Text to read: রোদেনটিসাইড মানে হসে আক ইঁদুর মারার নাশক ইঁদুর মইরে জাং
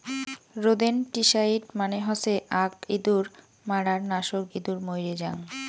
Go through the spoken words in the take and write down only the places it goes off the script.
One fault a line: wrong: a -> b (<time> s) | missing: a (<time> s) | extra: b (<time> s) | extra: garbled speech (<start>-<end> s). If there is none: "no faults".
no faults